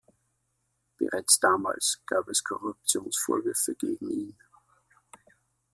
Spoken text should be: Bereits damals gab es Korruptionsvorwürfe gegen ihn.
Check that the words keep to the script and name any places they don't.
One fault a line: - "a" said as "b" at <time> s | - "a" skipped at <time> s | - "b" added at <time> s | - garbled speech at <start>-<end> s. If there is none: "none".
none